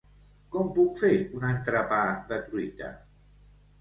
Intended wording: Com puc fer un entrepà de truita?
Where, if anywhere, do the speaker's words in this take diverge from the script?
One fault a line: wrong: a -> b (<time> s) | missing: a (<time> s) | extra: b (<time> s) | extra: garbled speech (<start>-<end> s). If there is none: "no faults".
no faults